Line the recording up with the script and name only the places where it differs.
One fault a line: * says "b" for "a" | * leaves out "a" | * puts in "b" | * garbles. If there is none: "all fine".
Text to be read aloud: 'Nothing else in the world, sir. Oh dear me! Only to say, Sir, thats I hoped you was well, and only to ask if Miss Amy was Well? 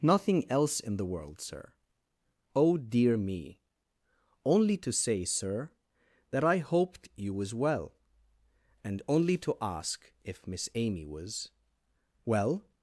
* says "that" for "thats"